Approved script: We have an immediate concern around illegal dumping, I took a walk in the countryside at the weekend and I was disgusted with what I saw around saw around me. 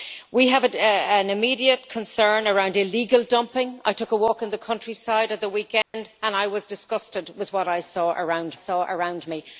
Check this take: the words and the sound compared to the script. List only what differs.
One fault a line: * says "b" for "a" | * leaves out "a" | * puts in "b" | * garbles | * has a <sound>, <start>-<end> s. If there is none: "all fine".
* has a dropout, 5.8-5.9 s